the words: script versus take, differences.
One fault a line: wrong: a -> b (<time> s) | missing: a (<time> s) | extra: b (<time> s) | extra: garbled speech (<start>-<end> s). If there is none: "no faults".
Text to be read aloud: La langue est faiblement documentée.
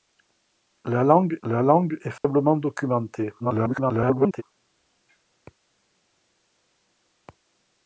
extra: la langue (1.4 s)
extra: garbled speech (3.4-4.4 s)